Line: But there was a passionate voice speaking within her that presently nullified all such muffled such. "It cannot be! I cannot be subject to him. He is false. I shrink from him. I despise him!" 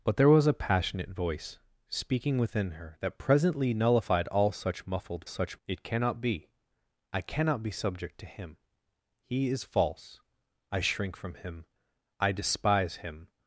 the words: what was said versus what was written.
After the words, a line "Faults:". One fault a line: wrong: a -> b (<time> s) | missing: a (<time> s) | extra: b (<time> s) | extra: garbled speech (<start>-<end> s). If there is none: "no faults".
But there was a passionate voice speaking within her that presently nullified all such muffled such. "It cannot be! I cannot be subject to him. He is false. I shrink from him. I despise him!"
Faults:
no faults